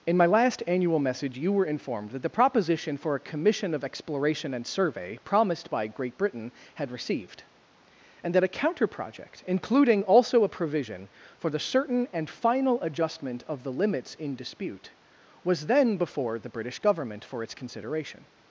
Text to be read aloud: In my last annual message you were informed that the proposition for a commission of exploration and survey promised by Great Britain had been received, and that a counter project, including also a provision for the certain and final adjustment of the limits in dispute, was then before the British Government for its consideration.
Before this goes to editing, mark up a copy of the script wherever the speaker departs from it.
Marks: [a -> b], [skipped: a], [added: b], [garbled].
In my last annual message you were informed that the proposition for a commission of exploration and survey promised by Great Britain had [skipped: been] received, and that a counter project, including also a provision for the certain and final adjustment of the limits in dispute, was then before the British Government for its consideration.